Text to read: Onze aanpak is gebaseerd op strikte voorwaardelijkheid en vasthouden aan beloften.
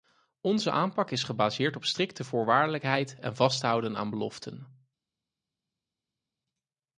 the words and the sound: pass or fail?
pass